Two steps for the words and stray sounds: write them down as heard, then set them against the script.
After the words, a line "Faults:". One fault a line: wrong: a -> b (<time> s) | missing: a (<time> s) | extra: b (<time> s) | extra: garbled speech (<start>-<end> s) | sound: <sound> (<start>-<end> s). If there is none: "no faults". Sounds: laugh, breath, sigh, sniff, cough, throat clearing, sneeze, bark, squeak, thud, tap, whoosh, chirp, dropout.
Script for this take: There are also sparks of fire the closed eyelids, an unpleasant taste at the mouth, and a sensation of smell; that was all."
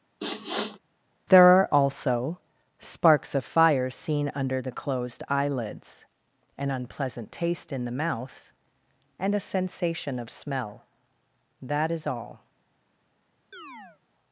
There are also sparks of fire seen under the closed eyelids, an unpleasant taste in the mouth, and a sensation of smell; that is all."
Faults:
sound: sniff (0.2-0.8 s)
extra: seen under (3.9 s)
wrong: at -> in (7.7 s)
wrong: was -> is (11.9 s)
sound: chirp (13.5-14.0 s)